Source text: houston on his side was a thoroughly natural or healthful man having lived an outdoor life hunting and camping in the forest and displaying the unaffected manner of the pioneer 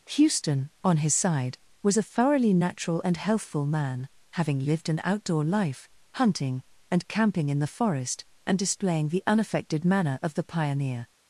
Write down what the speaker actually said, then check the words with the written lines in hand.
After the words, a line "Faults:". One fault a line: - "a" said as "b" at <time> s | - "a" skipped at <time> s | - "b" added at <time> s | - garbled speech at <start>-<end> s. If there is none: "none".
houston on his side was a thoroughly natural and healthful man having lived an outdoor life hunting and camping in the forest and displaying the unaffected manner of the pioneer
Faults:
- "or" said as "and" at 3.0 s